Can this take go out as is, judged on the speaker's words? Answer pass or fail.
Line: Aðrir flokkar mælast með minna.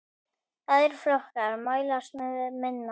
pass